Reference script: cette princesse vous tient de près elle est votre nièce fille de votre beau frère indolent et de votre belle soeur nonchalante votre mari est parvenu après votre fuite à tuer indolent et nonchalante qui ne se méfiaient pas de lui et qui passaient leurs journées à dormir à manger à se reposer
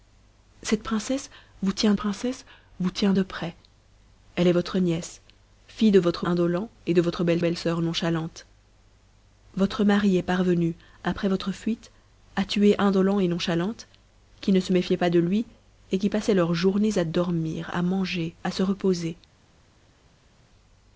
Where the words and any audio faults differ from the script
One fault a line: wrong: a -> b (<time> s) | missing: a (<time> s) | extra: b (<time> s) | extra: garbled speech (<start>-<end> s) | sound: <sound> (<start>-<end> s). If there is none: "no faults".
extra: princesse vous tient (1.9 s)
missing: beau frère (6.3 s)
extra: belle (7.4 s)